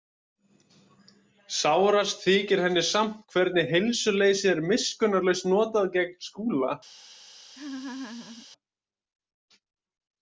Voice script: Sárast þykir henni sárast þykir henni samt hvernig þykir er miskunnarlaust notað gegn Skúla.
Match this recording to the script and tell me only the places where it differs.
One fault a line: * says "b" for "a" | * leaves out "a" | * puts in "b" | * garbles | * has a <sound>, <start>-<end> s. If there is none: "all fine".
* leaves out "sárast þykir henni"
* says "heilsuleysið" for "þykir"
* has a laugh, 7.5-8.5 s